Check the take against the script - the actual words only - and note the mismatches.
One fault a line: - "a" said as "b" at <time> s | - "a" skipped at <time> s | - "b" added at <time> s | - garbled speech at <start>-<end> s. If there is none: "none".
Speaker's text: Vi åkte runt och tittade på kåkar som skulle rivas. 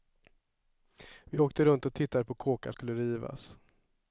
- "som" skipped at 2.7 s